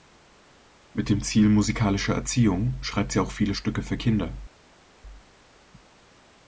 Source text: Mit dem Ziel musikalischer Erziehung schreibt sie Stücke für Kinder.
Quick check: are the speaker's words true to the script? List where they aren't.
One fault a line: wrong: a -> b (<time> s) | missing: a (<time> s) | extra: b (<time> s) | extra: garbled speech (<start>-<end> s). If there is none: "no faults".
extra: auch viele (3.2 s)